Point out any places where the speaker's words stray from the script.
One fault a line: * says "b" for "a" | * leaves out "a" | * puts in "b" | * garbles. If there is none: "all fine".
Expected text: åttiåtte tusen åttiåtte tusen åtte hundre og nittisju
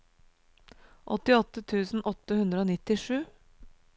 * leaves out "åttiåtte tusen"